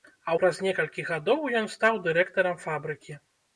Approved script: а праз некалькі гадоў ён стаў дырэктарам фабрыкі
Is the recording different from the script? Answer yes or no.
no